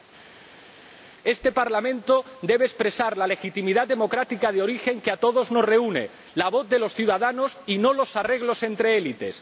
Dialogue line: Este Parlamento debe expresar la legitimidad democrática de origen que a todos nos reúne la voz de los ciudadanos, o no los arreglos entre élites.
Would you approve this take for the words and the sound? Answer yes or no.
no